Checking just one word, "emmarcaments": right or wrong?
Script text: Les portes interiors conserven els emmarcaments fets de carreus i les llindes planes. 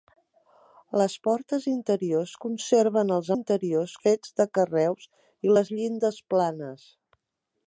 wrong